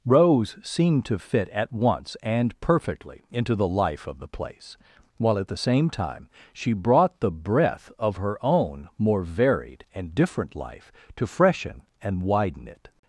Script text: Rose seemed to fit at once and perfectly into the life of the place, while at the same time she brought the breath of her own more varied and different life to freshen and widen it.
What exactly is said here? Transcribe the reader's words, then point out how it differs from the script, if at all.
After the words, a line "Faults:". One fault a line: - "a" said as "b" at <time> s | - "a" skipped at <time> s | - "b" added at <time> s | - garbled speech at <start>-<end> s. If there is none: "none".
Rose seemed to fit at once and perfectly into the life of the place, while at the same time she brought the breath of her own more varied and different life to freshen and widen it.
Faults:
none